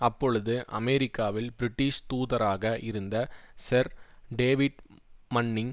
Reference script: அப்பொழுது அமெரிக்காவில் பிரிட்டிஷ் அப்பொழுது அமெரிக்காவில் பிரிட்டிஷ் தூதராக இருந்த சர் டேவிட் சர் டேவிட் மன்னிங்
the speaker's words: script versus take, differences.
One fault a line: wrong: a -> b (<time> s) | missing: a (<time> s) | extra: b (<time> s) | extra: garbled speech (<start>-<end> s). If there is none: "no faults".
missing: அப்பொழுது அமெரிக்காவில் பிரிட்டிஷ் (2.0 s)
missing: சர் டேவிட் (4.8 s)